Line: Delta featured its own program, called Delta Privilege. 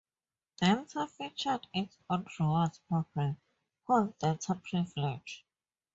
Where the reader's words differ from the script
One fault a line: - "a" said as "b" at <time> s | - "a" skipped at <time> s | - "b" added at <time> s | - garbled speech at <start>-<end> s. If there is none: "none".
- "rewards" added at 2.4 s